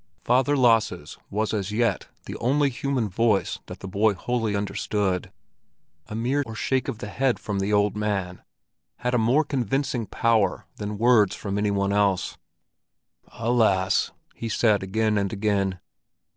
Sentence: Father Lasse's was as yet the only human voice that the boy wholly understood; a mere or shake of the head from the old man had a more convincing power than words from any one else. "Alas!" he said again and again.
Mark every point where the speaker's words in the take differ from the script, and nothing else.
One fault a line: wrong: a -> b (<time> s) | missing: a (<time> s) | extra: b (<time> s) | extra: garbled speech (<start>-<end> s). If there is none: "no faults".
no faults